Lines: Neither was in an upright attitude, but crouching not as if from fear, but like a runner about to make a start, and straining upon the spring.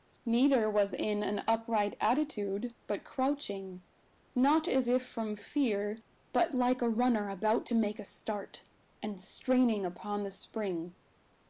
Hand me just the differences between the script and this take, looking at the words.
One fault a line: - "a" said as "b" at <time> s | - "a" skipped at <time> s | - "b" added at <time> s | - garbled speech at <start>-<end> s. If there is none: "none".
none